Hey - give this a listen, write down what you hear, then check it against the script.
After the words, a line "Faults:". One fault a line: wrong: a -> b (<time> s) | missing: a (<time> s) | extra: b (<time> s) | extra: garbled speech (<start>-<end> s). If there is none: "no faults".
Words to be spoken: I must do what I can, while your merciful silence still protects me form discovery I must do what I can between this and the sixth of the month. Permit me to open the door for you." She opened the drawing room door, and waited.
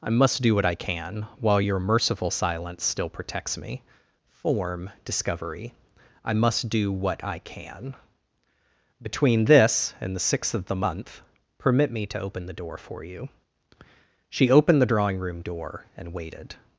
I must do what I can, while your merciful silence still protects me form discovery I must do what I can between this and the sixth of the month. Permit me to open the door for you." She opened the drawing room door, and waited.
Faults:
no faults